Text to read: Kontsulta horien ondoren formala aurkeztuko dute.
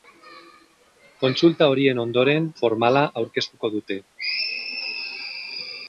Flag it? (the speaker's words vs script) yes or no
no